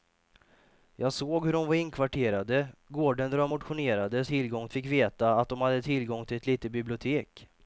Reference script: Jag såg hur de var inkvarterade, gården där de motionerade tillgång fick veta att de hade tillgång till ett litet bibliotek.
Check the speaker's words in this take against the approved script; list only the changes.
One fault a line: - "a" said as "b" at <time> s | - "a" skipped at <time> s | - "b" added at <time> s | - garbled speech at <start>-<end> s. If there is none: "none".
none